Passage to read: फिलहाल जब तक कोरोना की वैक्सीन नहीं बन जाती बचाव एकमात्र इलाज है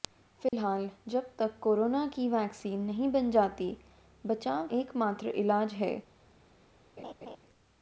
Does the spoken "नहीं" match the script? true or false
true